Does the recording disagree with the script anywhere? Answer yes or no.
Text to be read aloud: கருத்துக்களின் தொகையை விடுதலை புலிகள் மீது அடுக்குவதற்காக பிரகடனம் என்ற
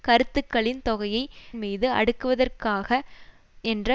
yes